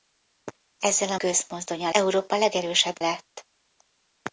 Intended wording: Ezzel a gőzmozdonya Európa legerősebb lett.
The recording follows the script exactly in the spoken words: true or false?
true